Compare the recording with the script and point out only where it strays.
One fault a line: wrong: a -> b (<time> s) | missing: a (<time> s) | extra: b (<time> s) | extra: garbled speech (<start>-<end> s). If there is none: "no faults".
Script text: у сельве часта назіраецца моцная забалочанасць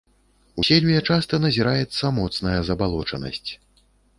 no faults